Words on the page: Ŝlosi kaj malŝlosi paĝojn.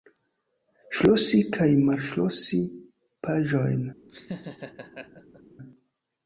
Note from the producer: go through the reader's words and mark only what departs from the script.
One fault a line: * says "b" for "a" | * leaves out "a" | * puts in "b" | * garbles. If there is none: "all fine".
all fine